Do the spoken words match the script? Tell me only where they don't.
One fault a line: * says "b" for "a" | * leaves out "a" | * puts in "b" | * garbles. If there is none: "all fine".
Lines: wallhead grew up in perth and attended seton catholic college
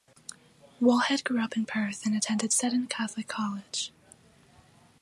all fine